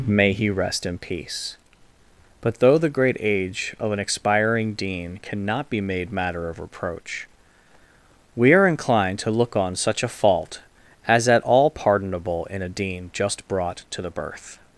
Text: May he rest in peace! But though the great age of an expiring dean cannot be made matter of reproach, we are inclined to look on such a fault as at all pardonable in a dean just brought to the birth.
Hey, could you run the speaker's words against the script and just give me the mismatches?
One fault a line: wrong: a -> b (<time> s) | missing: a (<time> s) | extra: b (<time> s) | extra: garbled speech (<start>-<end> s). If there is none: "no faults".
no faults